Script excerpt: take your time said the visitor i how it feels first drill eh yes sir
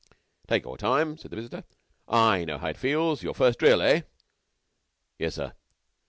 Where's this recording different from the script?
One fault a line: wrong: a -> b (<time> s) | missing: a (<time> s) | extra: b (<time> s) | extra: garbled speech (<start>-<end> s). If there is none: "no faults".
extra: know (2.4 s)
extra: your (3.2 s)